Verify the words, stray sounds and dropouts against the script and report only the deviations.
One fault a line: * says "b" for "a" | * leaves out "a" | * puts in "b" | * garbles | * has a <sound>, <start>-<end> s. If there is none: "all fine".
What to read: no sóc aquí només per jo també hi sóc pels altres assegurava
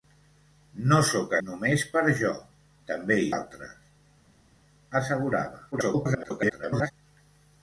* leaves out "aquí"
* leaves out "sóc pels"
* garbles